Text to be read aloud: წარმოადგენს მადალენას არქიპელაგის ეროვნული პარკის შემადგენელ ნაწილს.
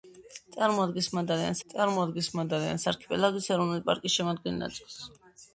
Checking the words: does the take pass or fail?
fail